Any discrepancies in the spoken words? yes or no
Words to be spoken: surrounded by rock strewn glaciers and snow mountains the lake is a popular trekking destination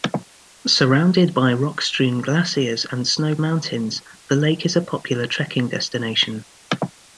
no